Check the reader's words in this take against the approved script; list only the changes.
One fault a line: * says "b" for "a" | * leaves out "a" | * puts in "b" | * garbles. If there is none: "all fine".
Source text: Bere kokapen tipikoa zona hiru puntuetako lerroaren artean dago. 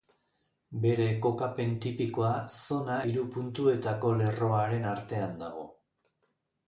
all fine